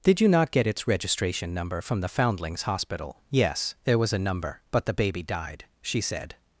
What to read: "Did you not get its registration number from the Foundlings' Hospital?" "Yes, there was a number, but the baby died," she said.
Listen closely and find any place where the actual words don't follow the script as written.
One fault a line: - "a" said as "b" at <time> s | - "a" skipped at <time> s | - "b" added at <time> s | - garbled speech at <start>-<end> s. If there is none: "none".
none